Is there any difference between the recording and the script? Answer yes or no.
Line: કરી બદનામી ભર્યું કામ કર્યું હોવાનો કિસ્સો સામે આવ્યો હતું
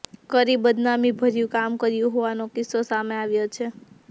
yes